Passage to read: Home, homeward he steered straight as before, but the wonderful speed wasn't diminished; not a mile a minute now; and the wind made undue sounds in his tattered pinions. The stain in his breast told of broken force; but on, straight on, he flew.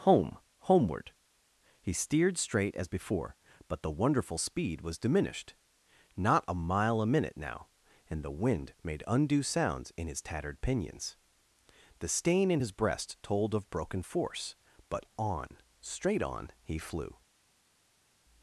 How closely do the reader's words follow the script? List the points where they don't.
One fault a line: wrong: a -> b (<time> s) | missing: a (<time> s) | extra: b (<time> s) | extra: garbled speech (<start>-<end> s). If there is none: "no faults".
wrong: wasn't -> was (4.8 s)